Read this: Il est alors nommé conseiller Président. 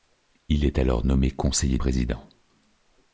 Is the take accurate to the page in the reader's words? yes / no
yes